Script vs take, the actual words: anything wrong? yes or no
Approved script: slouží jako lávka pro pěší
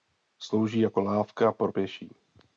no